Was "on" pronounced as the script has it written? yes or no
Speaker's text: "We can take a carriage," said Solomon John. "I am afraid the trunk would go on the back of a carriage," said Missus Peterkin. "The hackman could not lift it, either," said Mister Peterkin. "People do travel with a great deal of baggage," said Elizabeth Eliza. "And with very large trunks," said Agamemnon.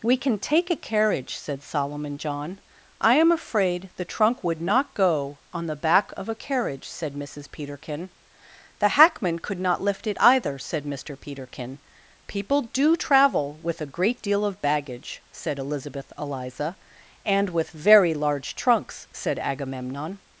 yes